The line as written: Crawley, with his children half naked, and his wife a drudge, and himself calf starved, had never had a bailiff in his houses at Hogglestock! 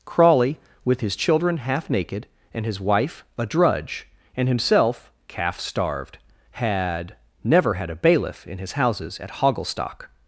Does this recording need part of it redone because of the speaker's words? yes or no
no